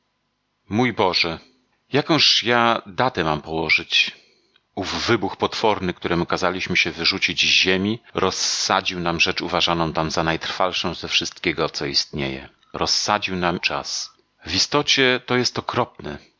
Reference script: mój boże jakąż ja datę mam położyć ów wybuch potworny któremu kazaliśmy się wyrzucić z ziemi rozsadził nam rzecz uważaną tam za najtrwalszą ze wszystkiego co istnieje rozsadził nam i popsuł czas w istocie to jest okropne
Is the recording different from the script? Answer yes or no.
yes